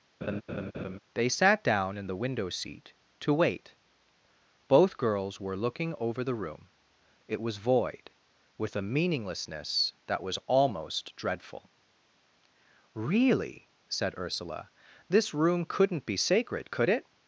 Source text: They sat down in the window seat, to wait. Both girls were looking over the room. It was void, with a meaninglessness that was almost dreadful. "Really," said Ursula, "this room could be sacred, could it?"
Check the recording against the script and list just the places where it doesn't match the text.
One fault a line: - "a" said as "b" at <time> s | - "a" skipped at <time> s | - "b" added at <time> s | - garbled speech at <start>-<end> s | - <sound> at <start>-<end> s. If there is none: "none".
- laugh at 0.2-1.0 s
- "could" said as "couldn't" at 15.6 s